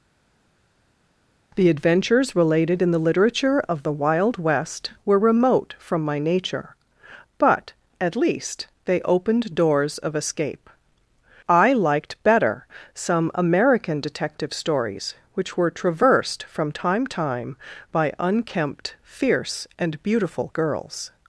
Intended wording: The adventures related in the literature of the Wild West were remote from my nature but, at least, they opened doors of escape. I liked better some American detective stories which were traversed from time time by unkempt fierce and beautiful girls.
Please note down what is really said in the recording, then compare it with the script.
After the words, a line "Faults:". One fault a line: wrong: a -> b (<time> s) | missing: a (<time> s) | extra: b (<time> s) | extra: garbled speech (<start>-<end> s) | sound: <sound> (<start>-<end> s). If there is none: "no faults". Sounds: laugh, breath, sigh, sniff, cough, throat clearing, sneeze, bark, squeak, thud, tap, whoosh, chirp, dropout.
The adventures related in the literature of the Wild West were remote from my nature but, at least, they opened doors of escape. I liked better some American detective stories which were traversed from time time by unkempt fierce and beautiful girls.
Faults:
no faults